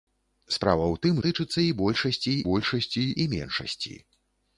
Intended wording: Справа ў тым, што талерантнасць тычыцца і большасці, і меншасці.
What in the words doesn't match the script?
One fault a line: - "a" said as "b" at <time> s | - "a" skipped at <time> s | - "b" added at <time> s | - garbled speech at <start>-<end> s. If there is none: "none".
- "што талерантнасць" skipped at 1.2 s
- "большасці" added at 2.5 s